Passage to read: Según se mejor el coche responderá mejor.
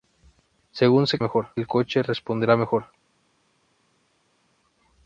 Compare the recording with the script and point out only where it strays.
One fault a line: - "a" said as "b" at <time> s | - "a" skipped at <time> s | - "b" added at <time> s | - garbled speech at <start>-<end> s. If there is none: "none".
none